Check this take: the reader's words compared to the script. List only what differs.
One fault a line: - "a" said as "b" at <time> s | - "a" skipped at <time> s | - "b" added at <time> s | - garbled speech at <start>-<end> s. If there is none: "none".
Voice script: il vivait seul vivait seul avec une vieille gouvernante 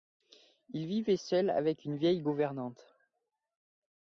- "vivait seul" skipped at 1.5 s